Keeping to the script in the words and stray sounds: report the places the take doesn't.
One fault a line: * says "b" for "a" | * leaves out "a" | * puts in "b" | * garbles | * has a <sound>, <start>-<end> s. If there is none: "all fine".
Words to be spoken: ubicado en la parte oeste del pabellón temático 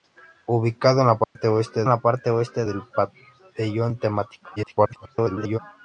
* has a dropout, 1.2-1.4 s
* puts in "la parte oeste"
* garbles